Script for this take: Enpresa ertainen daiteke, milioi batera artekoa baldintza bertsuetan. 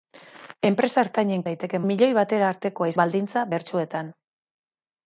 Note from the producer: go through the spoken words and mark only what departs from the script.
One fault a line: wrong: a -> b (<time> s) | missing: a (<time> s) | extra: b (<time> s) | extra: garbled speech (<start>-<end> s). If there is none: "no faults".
no faults